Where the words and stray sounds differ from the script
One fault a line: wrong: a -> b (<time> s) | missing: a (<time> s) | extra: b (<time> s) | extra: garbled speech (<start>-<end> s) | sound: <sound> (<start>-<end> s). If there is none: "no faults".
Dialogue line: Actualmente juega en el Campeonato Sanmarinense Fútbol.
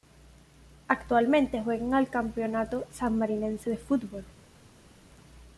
extra: de (3.7 s)